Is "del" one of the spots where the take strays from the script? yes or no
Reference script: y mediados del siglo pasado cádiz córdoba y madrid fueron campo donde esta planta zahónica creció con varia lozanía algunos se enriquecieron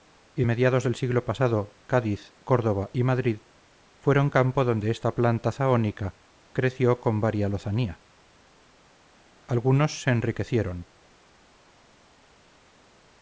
no